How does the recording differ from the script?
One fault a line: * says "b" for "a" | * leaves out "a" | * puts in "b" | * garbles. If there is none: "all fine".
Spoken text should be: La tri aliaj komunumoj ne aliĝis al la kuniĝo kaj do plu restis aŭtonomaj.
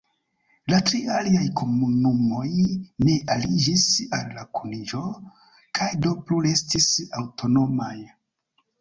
all fine